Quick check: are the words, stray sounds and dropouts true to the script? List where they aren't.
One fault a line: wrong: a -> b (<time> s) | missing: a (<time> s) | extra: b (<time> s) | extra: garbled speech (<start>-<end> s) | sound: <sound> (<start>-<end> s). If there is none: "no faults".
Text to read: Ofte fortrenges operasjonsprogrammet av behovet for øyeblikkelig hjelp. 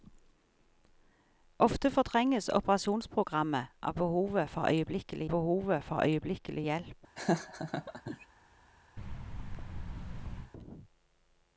extra: behovet for øyeblikkelig (5.3 s)
sound: laugh (7.2-8.3 s)
sound: thud (9.0-10.5 s)